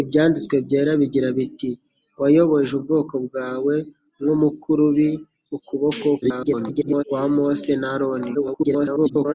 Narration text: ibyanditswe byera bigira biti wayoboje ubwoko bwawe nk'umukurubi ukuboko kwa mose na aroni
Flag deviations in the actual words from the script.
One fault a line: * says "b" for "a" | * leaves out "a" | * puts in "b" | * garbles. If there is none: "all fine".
* garbles
* garbles